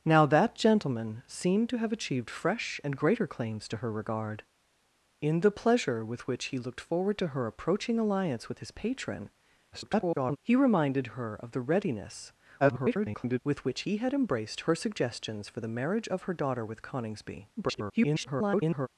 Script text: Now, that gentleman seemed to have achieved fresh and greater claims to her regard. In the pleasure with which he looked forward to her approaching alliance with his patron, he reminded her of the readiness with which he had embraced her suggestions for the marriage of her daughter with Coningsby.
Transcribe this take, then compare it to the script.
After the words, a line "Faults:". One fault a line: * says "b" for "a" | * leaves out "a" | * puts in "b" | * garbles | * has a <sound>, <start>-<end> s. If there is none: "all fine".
Now, that gentleman seemed to have achieved fresh and greater claims to her regard. In the pleasure with which he looked forward to her approaching alliance with his patron, [garbled] he reminded her of the readiness [garbled] with which he had embraced her suggestions for the marriage of her daughter with Coningsby. [garbled]
Faults:
* garbles
* garbles
* garbles